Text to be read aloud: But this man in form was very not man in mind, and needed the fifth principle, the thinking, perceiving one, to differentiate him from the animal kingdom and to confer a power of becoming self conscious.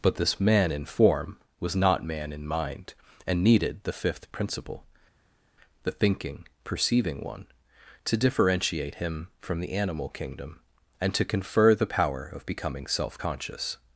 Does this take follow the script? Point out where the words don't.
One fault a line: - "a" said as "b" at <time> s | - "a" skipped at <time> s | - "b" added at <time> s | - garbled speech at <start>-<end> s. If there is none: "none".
- "very" skipped at 1.8 s
- "a" said as "the" at 11.7 s